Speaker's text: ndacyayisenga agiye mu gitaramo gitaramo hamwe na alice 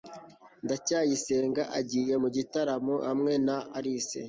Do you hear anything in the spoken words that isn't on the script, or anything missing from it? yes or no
yes